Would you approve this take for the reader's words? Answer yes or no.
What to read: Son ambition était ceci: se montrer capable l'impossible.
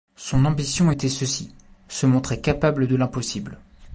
no